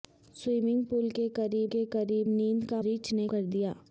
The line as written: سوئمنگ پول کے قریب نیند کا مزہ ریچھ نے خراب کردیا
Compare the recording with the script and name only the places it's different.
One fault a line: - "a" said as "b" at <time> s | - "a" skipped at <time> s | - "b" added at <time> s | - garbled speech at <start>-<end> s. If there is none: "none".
- "کے قریب" added at 1.7 s
- "مزہ" skipped at 2.8 s
- "خراب" skipped at 3.3 s